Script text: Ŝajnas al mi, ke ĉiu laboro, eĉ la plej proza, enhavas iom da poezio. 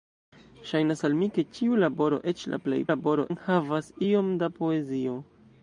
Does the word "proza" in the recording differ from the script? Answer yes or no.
yes